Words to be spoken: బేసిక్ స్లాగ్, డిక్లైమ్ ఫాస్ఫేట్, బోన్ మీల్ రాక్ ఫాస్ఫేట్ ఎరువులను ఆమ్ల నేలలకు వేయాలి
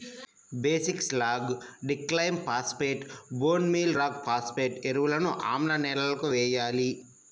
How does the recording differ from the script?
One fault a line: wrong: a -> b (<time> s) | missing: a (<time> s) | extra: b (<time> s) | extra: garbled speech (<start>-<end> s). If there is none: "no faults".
no faults